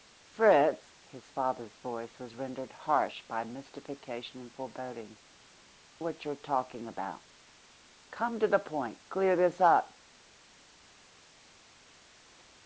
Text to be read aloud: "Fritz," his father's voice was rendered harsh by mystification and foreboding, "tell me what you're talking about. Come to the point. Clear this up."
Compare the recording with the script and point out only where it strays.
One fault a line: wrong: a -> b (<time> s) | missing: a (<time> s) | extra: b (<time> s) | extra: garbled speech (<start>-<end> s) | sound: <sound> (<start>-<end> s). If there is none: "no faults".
missing: tell me (5.2 s)